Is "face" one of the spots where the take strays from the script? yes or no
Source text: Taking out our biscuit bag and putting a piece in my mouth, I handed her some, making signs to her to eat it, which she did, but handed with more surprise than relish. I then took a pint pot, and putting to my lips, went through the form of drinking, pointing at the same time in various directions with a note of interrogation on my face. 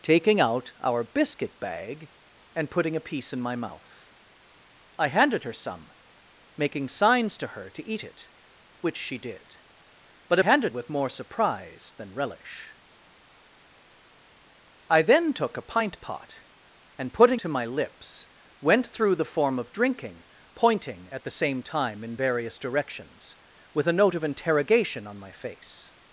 no